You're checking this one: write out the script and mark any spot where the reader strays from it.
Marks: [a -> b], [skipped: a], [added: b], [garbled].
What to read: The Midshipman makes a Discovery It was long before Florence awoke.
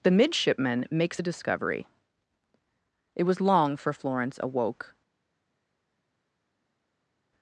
The Midshipman makes a Discovery It was long [before -> for] Florence awoke.